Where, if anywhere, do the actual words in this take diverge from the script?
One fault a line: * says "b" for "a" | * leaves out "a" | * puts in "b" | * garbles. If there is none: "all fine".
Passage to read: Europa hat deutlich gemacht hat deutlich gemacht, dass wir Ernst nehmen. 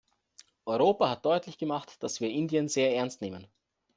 * says "dass wir Indien sehr" for "hat deutlich gemacht dass wir"